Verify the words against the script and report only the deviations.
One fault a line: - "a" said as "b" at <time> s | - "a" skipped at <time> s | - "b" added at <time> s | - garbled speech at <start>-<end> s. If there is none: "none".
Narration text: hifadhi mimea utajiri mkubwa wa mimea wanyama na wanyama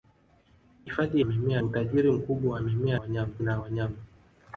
none